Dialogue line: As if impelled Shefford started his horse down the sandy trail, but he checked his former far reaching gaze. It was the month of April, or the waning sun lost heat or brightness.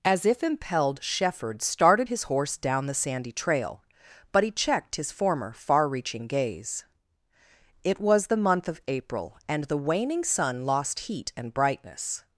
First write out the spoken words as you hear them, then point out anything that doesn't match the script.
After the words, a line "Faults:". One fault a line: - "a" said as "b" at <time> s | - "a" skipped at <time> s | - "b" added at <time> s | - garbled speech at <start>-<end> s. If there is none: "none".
As if impelled Shefford started his horse down the sandy trail, but he checked his former far reaching gaze. It was the month of April, and the waning sun lost heat and brightness.
Faults:
- "or" said as "and" at 9.5 s
- "or" said as "and" at 11.4 s